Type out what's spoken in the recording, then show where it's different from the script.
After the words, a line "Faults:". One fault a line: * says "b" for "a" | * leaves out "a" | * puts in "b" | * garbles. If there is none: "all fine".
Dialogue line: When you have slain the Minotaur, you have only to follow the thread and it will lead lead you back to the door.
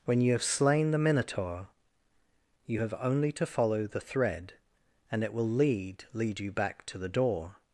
When you have slain the Minotaur, you have only to follow the thread and it will lead lead you back to the door.
Faults:
all fine